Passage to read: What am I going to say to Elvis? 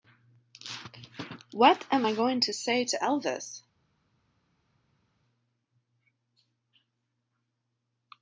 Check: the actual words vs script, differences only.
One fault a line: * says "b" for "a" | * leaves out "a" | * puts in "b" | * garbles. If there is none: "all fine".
all fine